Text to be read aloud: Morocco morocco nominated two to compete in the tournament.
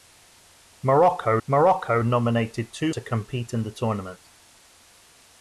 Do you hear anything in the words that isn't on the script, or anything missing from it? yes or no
no